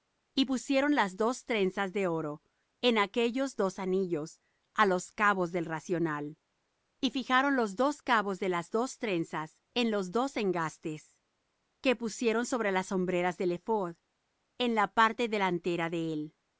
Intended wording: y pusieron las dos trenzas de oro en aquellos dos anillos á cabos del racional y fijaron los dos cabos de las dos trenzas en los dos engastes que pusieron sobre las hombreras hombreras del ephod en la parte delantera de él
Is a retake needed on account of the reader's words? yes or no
yes